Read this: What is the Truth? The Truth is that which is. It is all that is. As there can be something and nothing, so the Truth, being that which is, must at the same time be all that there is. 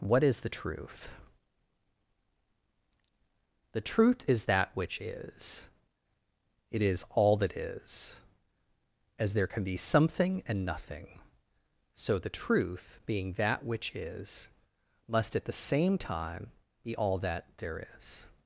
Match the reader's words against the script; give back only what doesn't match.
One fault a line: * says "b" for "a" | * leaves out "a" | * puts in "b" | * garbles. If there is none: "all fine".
all fine